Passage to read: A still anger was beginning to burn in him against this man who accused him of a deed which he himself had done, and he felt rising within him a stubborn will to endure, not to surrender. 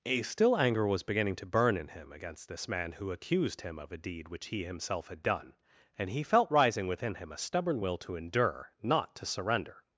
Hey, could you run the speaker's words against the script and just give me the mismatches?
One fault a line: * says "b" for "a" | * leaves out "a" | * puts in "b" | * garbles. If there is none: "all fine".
all fine